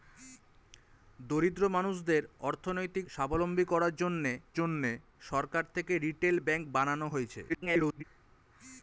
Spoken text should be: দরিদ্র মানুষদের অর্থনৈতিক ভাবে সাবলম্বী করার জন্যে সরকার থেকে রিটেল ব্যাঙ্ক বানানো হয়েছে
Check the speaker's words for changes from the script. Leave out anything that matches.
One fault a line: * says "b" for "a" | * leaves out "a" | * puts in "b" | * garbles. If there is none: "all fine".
* leaves out "ভাবে"
* puts in "জন্যে"
* garbles